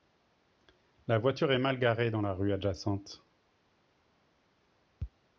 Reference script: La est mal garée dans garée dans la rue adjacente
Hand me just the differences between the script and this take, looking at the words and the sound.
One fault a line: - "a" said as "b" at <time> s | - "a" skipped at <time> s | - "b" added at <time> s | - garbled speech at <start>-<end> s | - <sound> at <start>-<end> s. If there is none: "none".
- "voiture" added at 1.2 s
- "garée dans" skipped at 2.2 s